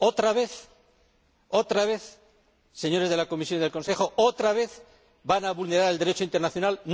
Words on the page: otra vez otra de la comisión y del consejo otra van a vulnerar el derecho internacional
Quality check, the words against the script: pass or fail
fail